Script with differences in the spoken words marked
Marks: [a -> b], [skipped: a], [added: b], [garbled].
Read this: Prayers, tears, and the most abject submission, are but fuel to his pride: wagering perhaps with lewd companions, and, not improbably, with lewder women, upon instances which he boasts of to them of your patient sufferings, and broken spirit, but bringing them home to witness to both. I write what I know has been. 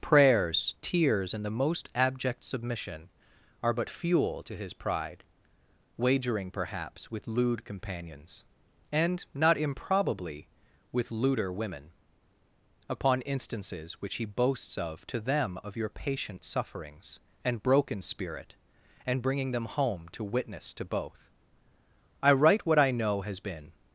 Prayers, tears, and the most abject submission, are but fuel to his pride: wagering perhaps with lewd companions, and, not improbably, with lewder women, upon instances which he boasts of to them of your patient sufferings, and broken spirit, [but -> and] bringing them home to witness to both. I write what I know has been.